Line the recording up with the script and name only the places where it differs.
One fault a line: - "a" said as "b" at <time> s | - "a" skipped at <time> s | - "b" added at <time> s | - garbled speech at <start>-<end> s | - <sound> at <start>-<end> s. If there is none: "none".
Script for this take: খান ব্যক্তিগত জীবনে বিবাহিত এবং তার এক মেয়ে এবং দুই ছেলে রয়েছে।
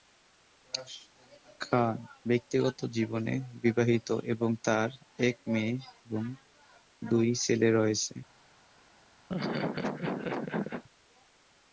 - laugh at 9.3-10.8 s